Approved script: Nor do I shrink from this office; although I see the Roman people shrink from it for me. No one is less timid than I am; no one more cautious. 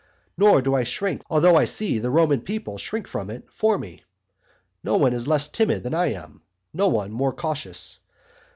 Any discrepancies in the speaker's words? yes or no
yes